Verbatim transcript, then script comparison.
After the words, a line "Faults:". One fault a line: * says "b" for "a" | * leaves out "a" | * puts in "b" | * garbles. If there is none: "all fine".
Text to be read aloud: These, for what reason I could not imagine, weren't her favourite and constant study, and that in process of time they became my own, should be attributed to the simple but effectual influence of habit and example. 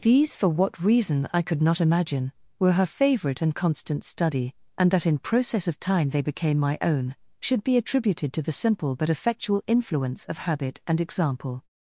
These, for what reason I could not imagine, were her favourite and constant study, and that in process of time they became my own, should be attributed to the simple but effectual influence of habit and example.
Faults:
* says "were" for "weren't"